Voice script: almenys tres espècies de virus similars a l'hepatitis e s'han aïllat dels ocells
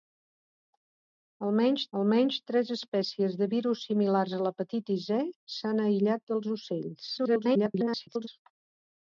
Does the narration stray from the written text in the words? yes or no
yes